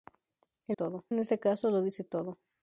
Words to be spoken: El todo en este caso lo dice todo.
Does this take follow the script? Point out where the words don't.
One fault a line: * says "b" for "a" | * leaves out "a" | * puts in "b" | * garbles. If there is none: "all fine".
all fine